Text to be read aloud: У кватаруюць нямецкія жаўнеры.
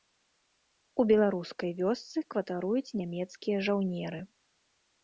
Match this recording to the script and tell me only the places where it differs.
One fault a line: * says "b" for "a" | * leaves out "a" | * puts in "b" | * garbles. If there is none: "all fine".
* puts in "беларускай вёсцы"